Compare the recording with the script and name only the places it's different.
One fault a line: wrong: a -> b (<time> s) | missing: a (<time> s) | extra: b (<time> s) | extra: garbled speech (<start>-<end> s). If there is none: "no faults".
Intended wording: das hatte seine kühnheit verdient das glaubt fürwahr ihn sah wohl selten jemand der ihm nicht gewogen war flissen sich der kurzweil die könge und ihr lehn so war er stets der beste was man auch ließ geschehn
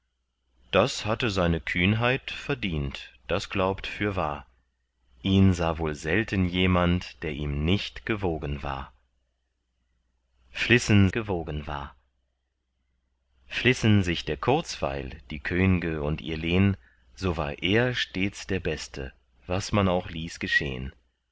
extra: gewogen war flissen (11.1 s)